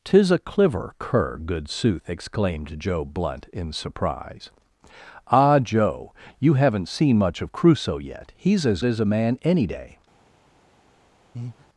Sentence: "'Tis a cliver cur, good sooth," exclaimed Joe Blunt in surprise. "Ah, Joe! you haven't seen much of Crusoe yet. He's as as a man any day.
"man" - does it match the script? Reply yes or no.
yes